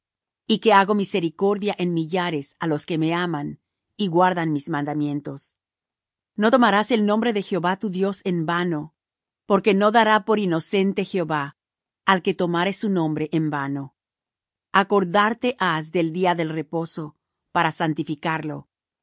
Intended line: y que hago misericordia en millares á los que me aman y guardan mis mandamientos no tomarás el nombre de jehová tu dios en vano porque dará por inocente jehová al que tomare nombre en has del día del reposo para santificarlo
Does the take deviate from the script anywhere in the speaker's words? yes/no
yes